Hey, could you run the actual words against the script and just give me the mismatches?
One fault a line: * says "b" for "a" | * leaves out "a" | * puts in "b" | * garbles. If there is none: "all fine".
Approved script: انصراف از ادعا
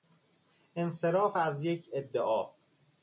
* puts in "یک"